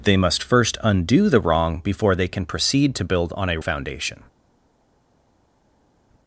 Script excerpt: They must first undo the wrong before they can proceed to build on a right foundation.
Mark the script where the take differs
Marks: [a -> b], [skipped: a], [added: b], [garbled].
They must first undo the wrong before they can proceed to build on a [skipped: right] foundation.